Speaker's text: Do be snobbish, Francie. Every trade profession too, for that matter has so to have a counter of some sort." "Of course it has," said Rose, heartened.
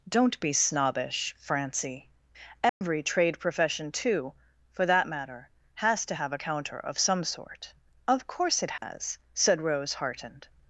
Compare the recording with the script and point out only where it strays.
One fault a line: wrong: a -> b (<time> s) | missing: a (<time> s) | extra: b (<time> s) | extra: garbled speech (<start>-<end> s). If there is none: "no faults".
wrong: Do -> Don't (0.1 s)
missing: so (6.1 s)